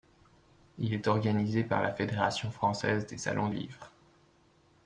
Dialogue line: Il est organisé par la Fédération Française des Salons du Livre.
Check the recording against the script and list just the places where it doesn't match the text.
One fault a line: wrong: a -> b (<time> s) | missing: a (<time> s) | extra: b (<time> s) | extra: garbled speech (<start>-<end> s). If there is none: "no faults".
missing: du (3.5 s)